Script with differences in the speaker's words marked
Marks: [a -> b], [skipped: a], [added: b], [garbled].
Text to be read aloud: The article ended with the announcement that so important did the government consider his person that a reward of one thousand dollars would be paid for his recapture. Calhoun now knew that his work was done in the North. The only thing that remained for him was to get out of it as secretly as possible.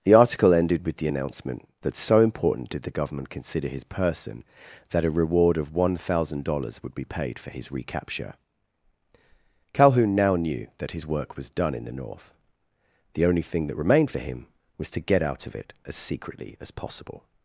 The article ended with the announcement that so important did the government consider his person that a reward of one thousand dollars would be paid for his recapture. Calhoun now knew that his work was done in the North. The only thing that remained for him was to get out of it as secretly as possible.